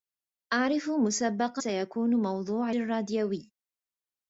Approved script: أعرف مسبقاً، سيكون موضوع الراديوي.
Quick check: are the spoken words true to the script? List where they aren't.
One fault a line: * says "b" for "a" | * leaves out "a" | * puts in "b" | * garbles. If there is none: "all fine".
all fine